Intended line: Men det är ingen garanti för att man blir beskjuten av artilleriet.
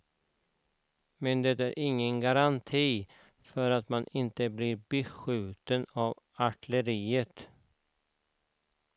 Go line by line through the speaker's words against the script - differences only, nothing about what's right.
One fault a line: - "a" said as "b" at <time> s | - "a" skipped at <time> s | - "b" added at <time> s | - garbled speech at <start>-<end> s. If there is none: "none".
- "inte" added at 4.1 s